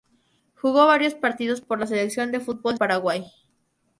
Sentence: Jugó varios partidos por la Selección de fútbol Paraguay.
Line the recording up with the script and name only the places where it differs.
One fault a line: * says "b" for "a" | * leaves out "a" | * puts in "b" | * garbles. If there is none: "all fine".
all fine